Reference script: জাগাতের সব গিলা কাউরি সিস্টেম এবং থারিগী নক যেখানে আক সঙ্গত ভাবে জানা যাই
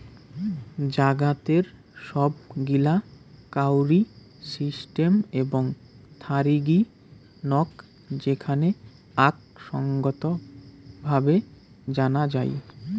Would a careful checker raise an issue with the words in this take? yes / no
no